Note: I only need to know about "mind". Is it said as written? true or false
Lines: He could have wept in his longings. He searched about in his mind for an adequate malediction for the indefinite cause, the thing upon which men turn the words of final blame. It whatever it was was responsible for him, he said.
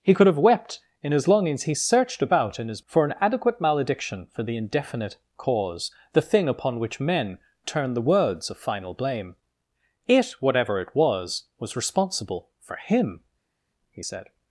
false